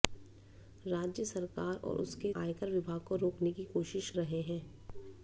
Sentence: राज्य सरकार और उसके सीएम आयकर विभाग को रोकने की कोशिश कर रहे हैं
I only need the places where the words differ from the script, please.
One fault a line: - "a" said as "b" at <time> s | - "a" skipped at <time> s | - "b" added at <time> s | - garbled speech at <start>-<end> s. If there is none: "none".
- "सीएम" skipped at 2.3 s
- "कर" skipped at 4.1 s